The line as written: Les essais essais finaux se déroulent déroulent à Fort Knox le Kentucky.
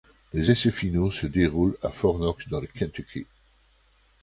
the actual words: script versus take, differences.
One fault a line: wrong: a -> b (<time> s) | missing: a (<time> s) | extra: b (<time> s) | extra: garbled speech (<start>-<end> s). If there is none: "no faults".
missing: essais (0.7 s)
missing: déroulent (1.8 s)
extra: dans (2.5 s)